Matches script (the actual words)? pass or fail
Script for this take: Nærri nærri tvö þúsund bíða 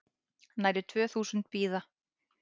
fail